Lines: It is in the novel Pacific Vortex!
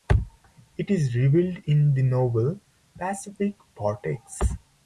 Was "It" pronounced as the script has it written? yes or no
yes